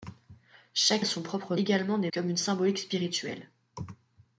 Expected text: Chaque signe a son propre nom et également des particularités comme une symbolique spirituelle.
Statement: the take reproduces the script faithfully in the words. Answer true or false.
false